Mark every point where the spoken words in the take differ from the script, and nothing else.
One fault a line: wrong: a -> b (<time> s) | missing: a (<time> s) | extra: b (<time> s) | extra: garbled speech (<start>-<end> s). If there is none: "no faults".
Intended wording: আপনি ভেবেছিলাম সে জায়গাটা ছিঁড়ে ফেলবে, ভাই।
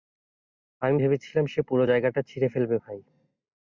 wrong: আপনি -> আমি (0.8 s)
extra: পুরো (1.6 s)